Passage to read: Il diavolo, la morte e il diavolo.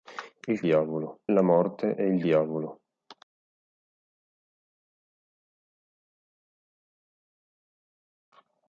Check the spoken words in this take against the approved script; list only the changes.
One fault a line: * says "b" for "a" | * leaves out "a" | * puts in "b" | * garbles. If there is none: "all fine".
all fine